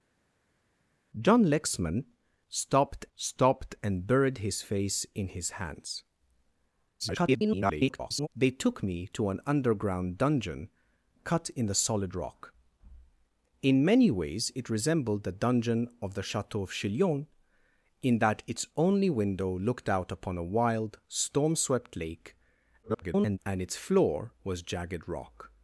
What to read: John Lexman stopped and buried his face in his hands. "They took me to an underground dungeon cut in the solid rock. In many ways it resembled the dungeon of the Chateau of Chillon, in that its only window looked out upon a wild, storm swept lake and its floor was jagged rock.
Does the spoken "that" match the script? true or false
true